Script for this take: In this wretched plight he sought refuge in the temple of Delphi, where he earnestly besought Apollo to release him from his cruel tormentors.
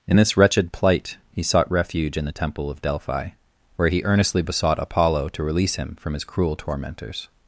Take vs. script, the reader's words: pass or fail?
pass